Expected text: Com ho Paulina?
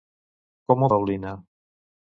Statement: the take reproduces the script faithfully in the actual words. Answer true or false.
true